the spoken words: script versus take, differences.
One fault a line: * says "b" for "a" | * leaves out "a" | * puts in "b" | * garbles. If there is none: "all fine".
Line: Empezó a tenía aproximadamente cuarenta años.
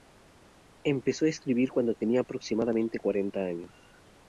* puts in "escribir cuando"